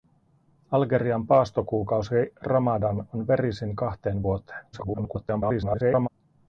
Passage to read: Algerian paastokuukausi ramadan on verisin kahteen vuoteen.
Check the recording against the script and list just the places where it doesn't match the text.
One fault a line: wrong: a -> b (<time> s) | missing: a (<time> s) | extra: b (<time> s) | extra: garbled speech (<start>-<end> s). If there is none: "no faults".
extra: garbled speech (4.7-6.1 s)